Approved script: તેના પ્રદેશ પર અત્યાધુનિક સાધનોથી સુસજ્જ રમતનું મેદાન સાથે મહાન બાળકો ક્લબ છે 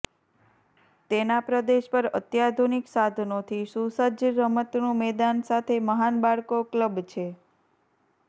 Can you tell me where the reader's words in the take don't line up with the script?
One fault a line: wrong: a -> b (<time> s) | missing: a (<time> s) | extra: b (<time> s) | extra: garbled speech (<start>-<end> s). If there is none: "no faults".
no faults